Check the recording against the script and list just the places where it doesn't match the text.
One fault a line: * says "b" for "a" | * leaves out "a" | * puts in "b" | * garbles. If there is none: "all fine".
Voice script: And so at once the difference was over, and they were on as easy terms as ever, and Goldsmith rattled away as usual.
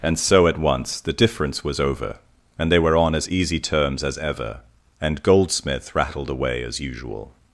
all fine